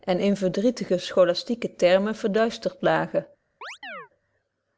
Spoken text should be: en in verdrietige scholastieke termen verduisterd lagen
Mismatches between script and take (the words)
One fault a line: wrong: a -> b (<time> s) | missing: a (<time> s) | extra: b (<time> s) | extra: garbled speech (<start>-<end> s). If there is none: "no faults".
no faults